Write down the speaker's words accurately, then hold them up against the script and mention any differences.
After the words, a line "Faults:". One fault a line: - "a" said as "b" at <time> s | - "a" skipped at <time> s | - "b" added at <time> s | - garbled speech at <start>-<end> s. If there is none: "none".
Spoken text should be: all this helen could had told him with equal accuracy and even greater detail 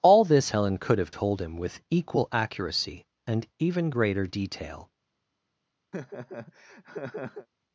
all this helen could have told him with equal accuracy and even greater detail
Faults:
- "had" said as "have" at 1.0 s